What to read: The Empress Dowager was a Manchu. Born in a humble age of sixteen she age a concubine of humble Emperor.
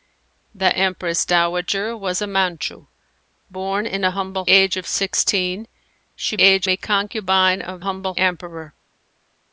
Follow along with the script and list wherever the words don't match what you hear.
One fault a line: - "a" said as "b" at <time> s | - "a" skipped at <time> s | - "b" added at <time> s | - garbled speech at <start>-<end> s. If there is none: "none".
none